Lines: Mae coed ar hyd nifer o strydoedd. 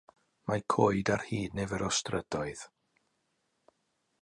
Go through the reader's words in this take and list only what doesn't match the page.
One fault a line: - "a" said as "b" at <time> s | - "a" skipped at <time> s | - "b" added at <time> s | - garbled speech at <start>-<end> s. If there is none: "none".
none